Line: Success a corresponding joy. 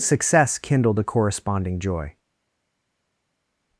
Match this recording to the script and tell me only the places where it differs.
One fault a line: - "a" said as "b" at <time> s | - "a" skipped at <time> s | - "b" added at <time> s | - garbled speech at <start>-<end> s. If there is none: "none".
- "kindled" added at 0.6 s